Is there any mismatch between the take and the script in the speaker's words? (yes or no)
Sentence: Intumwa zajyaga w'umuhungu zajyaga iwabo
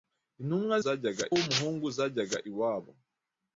no